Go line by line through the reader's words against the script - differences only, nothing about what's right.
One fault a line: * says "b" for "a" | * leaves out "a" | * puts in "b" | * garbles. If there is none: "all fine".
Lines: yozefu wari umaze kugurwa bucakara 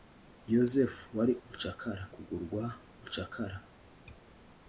* says "bucakara" for "umaze"